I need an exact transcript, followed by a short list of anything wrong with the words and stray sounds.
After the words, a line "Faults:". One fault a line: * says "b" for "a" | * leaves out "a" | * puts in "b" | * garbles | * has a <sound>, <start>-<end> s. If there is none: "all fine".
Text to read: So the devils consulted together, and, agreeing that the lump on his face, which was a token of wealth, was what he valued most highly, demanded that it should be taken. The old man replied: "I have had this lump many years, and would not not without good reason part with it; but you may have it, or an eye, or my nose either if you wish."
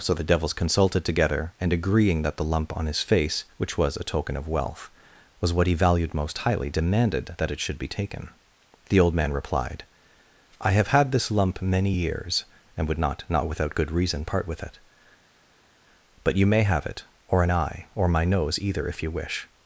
So the devils consulted together, and, agreeing that the lump on his face, which was a token of wealth, was what he valued most highly, demanded that it should be taken. The old man replied: "I have had this lump many years, and would not not without good reason part with it; but you may have it, or an eye, or my nose either if you wish."
Faults:
all fine